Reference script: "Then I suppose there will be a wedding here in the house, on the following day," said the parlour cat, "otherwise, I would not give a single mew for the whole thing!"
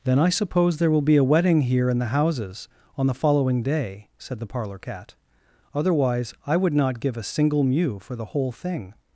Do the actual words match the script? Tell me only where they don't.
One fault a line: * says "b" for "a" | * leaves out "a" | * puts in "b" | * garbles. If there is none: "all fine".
* says "houses" for "house"